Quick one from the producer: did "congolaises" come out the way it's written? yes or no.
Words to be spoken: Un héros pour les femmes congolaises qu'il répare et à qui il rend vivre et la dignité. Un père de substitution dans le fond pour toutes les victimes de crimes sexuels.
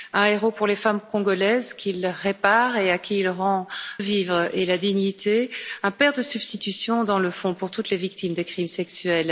yes